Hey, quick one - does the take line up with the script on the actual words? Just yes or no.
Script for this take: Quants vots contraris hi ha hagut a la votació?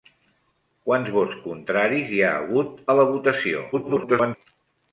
no